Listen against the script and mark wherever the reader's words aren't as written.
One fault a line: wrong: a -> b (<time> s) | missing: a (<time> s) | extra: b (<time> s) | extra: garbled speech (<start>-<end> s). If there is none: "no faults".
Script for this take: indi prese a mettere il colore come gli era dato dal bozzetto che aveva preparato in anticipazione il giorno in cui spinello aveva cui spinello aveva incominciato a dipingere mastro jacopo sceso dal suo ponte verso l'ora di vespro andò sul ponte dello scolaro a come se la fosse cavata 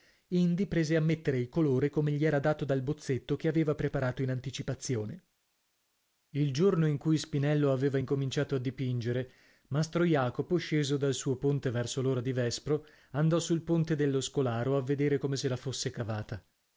missing: cui spinello aveva (8.0 s)
extra: vedere (14.8 s)